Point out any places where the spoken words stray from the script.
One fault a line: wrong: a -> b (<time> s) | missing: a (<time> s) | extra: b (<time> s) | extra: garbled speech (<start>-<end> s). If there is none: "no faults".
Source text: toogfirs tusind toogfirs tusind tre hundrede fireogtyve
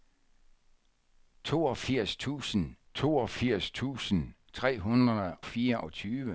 no faults